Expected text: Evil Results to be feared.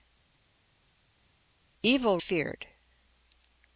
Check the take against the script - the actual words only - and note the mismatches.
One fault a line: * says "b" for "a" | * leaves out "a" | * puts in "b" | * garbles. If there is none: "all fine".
* leaves out "Results to be"